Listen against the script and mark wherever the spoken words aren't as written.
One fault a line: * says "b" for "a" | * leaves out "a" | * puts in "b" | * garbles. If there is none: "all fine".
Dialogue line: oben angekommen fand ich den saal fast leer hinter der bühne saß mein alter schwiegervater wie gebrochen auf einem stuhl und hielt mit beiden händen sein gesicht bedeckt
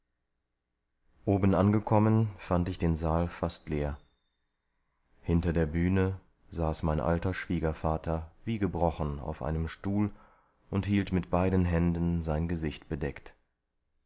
all fine